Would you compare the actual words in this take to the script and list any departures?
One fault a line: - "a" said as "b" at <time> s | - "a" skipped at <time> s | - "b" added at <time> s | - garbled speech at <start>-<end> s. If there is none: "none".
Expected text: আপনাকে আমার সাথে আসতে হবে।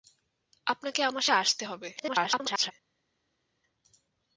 - "সাথে" skipped at 1.2 s
- garbled speech at 2.0-2.7 s